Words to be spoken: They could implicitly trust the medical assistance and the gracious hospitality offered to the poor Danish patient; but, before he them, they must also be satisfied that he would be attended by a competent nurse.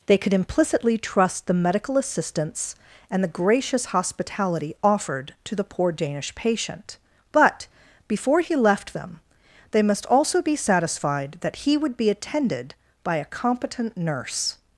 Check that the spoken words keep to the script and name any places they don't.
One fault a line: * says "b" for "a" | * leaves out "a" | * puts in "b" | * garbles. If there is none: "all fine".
* puts in "left"